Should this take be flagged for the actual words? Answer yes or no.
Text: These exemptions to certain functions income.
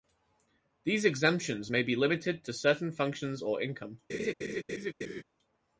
yes